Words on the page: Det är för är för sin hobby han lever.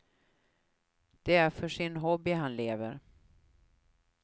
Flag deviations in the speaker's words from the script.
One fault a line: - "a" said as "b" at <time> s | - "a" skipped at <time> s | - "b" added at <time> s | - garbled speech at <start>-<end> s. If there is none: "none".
- "är för" skipped at 1.7 s